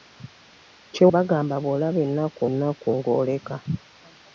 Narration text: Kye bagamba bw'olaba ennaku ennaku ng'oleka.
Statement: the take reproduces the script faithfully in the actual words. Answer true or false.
true